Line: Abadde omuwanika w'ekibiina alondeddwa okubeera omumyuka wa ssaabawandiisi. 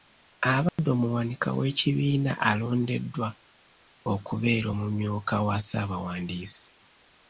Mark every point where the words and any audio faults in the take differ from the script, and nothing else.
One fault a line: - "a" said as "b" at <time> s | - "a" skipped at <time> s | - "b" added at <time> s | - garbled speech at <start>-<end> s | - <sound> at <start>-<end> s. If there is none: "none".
- dropout at 0.7-0.8 s